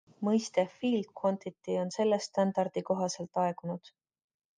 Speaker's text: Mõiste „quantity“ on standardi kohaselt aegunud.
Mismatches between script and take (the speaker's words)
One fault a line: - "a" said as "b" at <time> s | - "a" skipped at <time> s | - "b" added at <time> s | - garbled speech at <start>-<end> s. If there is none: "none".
- "field" added at 0.8 s
- "selle" added at 1.9 s